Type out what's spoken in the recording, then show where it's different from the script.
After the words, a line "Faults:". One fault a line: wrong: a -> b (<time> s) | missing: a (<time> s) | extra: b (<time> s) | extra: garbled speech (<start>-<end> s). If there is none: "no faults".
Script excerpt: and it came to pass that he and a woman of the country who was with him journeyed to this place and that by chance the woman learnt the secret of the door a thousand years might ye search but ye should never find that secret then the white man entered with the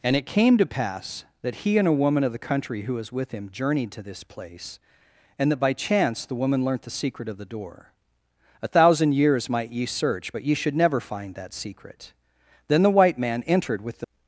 and it came to pass that he and a woman of the country who was with him journeyed to this place and that by chance the woman learnt the secret of the door a thousand years might ye search but ye should never find that secret then the white man entered with the
Faults:
no faults